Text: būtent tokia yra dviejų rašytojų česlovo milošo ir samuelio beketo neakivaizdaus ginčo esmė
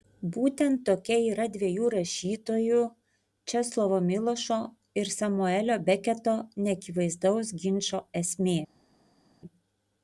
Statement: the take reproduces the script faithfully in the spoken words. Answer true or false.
true